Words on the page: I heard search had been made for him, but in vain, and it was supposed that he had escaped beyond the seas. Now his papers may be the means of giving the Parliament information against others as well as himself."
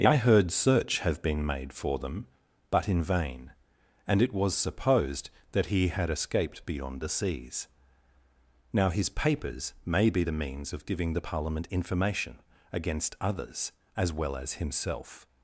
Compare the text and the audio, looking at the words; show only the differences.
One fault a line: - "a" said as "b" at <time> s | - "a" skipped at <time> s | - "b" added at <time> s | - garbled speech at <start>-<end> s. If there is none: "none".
- "had" said as "have" at 1.0 s
- "him" said as "them" at 2.0 s